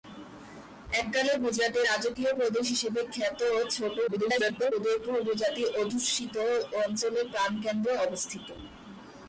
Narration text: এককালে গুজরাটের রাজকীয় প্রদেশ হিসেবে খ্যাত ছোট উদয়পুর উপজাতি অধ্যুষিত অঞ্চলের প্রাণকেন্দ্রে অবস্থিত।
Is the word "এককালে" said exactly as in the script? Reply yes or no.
yes